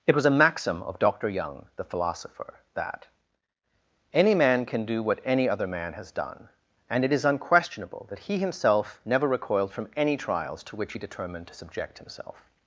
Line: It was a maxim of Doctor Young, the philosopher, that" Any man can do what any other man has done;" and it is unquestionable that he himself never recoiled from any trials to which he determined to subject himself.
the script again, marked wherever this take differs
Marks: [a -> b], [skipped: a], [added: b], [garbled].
It was a maxim of Doctor Young, the philosopher, that" Any man can do what any other man has done;" and it is unquestionable that he himself never recoiled from any trials to which he determined to subject himself.